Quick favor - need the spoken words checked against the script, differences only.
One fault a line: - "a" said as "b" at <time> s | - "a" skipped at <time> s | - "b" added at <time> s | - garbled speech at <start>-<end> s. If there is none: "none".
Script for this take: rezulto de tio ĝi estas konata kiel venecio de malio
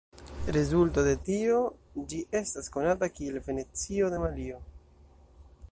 none